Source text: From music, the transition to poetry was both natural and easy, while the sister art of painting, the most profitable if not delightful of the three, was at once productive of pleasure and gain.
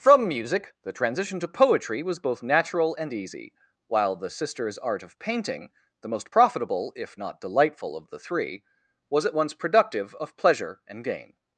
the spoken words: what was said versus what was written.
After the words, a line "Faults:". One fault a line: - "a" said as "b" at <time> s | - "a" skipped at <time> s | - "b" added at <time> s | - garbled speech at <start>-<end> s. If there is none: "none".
From music, the transition to poetry was both natural and easy, while the sisters art of painting, the most profitable if not delightful of the three, was at once productive of pleasure and gain.
Faults:
- "sister" said as "sisters" at 4.3 s